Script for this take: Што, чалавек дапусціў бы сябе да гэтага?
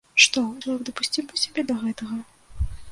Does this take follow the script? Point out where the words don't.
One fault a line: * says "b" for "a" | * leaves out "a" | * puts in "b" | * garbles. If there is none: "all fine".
all fine